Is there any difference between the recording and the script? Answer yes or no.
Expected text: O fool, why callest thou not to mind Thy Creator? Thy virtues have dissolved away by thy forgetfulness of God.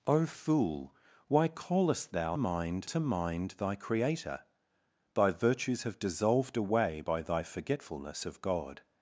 yes